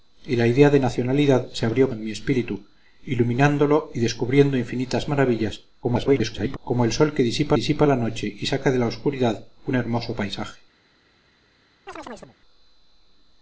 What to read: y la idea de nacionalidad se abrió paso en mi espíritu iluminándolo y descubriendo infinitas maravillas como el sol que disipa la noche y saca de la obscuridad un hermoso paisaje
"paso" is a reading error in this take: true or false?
true